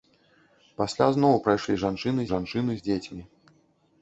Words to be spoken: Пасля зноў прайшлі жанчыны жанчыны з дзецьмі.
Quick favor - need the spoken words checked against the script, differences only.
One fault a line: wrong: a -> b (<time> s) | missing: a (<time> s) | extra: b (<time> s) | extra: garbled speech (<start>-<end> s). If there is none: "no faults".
no faults